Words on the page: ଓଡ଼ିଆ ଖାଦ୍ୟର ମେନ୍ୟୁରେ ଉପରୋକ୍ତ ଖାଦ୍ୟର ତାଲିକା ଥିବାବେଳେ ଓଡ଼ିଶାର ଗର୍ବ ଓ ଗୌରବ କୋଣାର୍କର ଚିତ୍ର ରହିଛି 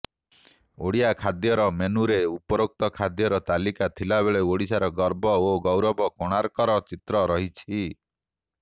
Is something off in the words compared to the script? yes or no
no